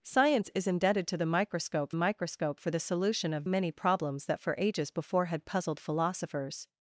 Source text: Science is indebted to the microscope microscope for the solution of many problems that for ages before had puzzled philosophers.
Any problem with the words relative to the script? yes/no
no